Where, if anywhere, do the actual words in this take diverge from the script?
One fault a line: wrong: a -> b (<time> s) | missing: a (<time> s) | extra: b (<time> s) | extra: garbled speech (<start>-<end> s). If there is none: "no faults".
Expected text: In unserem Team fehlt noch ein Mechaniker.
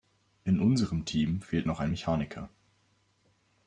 no faults